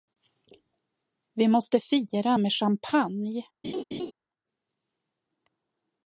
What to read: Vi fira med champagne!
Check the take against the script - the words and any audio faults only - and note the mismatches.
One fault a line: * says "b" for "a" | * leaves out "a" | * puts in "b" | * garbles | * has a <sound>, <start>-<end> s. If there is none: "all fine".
* puts in "måste"
* has a laugh, 3.6-4.1 s